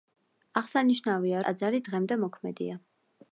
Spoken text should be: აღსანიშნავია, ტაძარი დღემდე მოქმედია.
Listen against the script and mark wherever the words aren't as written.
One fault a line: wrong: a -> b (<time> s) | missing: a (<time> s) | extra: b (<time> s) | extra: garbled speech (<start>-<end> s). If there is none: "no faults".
no faults